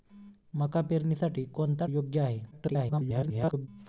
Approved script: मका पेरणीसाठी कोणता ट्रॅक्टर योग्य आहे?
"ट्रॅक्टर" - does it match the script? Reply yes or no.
no